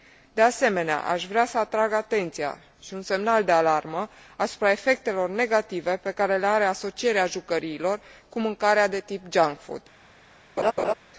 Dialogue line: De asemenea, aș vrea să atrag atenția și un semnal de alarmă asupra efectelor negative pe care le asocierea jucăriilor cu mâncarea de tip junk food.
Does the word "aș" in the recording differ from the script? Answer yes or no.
no